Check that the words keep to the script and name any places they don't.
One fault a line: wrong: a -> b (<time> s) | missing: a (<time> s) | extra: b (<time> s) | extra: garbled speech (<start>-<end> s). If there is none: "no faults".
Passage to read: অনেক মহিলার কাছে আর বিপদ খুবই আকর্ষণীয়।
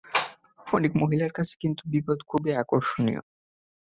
wrong: আর -> কিন্তু (1.6 s)